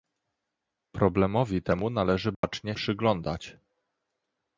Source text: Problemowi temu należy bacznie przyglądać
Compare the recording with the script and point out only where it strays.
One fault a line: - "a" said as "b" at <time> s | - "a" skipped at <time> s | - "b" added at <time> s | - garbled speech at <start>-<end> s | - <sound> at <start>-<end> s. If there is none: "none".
- dropout at 2.3-2.4 s